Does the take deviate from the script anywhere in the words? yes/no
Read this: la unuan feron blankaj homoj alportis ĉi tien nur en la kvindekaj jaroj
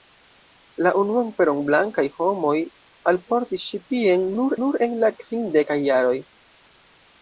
yes